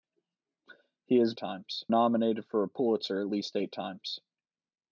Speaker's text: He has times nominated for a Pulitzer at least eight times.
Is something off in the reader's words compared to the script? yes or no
no